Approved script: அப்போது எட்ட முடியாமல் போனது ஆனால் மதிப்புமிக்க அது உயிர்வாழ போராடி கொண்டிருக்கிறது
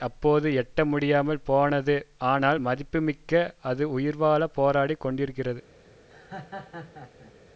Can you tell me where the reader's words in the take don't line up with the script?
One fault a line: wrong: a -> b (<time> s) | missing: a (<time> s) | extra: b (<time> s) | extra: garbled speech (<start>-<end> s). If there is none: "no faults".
no faults